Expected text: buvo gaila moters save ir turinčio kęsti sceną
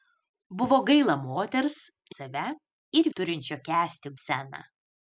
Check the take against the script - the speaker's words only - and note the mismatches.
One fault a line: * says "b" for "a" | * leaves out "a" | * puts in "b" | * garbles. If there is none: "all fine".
all fine